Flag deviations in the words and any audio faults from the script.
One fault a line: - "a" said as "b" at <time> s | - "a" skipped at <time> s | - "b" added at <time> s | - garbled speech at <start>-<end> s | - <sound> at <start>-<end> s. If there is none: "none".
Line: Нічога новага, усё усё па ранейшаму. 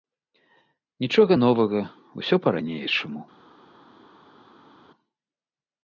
- "усё" skipped at 2.3 s